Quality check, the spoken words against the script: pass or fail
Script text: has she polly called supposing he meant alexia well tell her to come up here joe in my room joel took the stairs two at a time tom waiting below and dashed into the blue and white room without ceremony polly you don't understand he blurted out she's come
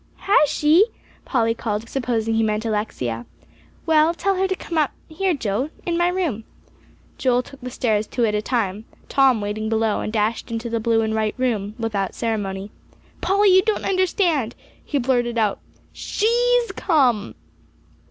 pass